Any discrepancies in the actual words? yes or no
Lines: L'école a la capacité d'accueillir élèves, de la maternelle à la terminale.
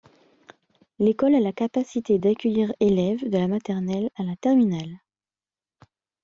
no